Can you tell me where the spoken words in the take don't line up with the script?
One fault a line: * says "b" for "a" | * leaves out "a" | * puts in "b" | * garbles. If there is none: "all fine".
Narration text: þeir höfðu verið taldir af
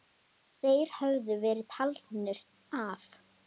all fine